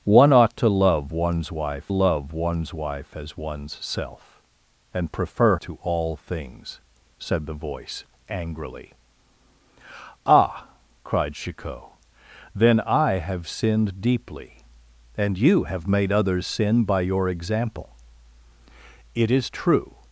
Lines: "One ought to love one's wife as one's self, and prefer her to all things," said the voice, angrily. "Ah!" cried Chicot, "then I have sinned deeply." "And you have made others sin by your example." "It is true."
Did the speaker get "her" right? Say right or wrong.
wrong